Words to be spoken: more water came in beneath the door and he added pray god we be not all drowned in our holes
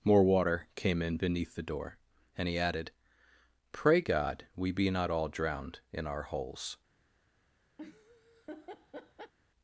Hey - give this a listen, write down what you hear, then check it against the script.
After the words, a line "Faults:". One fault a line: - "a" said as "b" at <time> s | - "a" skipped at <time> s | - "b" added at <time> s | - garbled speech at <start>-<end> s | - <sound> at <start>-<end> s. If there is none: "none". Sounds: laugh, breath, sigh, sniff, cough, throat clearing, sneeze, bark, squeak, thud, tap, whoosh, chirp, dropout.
more water came in beneath the door and he added pray god we be not all drowned in our holes
Faults:
- laugh at 7.8-9.3 s